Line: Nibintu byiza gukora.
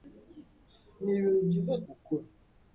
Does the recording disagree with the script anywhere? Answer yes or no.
no